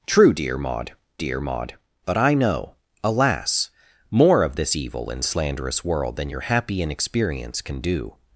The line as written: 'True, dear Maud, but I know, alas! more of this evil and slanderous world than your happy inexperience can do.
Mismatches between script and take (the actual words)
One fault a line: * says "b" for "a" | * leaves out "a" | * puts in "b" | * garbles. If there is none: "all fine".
* puts in "dear Maud"